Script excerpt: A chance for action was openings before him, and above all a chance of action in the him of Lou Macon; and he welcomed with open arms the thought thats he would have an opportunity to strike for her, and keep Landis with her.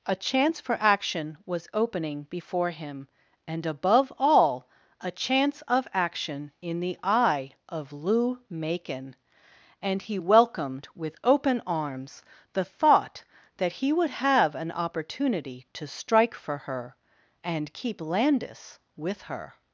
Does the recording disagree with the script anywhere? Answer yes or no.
yes